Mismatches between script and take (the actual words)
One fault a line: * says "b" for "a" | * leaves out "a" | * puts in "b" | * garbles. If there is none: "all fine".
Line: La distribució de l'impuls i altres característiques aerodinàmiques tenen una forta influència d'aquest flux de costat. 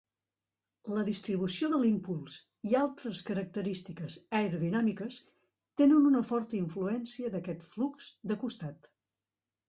all fine